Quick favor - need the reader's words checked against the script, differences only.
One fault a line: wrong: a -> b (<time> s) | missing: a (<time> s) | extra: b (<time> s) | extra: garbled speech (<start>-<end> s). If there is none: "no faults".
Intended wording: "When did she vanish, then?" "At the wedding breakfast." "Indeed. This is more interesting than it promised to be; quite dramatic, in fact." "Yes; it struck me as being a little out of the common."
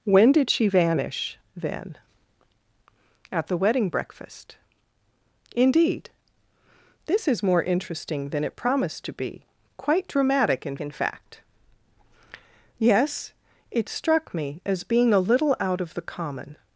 extra: in (10.8 s)